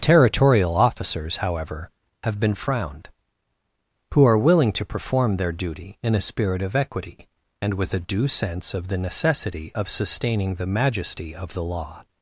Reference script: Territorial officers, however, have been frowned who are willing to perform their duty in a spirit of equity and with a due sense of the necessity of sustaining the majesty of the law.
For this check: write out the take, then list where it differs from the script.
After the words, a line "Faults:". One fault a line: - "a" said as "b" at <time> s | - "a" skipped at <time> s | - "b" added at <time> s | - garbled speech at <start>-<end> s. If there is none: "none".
Territorial officers, however, have been frowned who are willing to perform their duty in a spirit of equity and with a due sense of the necessity of sustaining the majesty of the law.
Faults:
none